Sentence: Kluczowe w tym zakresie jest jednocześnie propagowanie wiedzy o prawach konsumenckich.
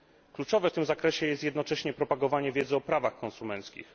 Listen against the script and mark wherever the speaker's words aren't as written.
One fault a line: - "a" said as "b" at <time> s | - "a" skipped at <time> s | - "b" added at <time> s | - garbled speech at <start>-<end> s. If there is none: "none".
none